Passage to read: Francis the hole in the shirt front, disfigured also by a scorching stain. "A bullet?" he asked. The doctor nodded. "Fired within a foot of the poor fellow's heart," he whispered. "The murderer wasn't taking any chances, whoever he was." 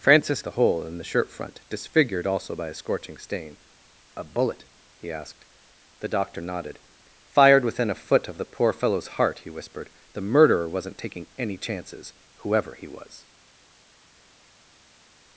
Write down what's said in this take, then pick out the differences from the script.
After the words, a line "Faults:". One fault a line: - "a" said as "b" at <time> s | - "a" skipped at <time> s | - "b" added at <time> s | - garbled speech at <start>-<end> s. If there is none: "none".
Francis the hole in the shirt front, disfigured also by a scorching stain. "A bullet?" he asked. The doctor nodded. "Fired within a foot of the poor fellow's heart," he whispered. "The murderer wasn't taking any chances, whoever he was."
Faults:
none